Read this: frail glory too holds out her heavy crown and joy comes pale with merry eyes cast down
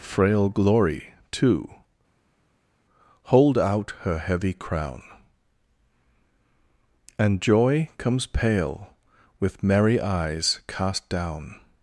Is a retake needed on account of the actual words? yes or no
yes